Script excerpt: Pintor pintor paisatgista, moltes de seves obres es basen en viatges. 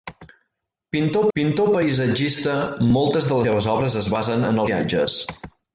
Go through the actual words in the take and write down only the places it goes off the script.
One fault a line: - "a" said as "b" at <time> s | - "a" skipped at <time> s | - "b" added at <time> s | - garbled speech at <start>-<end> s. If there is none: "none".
none